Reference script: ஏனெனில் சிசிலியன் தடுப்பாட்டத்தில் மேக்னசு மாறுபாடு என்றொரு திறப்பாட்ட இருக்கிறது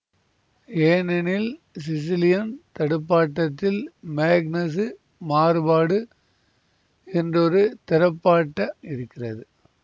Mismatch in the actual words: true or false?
false